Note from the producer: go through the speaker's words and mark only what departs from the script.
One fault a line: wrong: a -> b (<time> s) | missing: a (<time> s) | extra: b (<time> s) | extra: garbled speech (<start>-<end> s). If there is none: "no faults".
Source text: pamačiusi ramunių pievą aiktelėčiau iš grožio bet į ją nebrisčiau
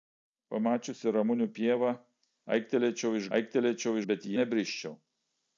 wrong: grožio -> aiktelėčiau (3.4 s)
missing: ją (4.4 s)